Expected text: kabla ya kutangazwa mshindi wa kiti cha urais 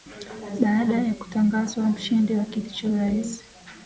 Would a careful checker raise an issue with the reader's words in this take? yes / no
yes